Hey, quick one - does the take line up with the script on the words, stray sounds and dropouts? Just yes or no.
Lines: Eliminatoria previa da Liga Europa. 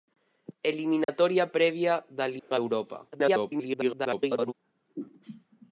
no